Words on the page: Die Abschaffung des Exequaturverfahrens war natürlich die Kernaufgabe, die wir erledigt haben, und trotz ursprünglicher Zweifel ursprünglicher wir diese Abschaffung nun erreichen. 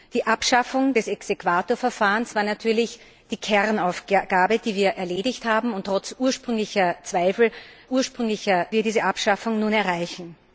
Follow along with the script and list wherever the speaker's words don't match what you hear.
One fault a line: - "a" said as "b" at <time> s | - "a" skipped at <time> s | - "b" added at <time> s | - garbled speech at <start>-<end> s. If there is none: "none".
none